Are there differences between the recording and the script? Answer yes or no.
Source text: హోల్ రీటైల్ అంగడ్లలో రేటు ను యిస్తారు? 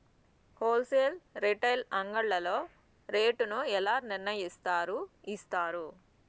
yes